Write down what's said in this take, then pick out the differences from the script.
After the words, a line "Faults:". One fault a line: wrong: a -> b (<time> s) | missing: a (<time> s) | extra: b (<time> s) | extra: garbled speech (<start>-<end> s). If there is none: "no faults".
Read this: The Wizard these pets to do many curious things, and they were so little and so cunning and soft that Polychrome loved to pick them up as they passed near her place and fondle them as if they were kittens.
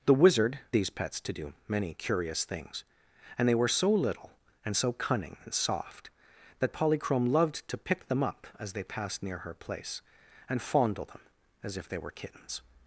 The Wizard these pets to do many curious things, and they were so little and so cunning and soft that Polychrome loved to pick them up as they passed near her place and fondle them as if they were kittens.
Faults:
no faults